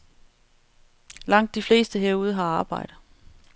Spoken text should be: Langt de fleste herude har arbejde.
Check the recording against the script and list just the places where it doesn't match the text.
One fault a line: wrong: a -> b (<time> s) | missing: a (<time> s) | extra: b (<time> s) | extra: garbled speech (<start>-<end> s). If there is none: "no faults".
no faults